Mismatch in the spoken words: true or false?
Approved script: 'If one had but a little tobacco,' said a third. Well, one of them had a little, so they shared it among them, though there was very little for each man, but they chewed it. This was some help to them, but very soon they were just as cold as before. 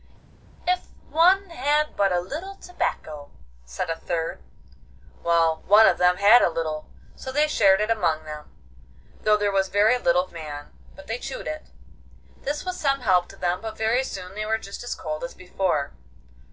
true